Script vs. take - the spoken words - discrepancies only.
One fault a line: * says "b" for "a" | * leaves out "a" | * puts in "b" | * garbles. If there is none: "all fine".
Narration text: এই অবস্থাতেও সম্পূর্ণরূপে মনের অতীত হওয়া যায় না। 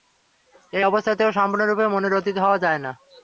all fine